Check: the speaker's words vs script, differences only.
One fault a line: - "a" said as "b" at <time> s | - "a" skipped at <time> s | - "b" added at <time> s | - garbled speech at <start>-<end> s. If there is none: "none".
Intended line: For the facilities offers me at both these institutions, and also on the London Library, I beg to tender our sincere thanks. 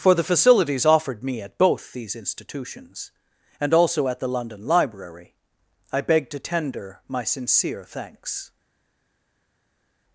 - "offers" said as "offered" at 0.8 s
- "on" said as "at" at 4.1 s
- "our" said as "my" at 7.1 s